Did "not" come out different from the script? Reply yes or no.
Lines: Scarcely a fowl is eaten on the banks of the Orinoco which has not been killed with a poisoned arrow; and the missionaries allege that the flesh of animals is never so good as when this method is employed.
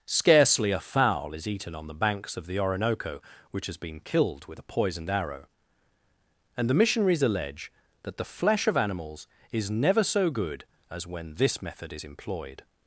yes